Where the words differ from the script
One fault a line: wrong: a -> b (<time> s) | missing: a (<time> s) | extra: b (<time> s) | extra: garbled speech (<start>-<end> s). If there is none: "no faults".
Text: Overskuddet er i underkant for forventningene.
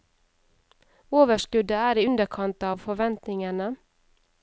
wrong: for -> av (2.7 s)